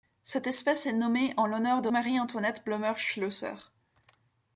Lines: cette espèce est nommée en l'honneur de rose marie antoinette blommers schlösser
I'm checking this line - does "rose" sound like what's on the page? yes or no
no